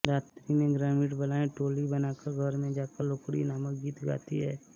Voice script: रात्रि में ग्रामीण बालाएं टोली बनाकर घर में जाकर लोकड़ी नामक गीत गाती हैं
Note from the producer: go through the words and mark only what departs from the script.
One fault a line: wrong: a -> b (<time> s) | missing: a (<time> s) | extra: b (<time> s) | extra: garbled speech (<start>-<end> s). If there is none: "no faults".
no faults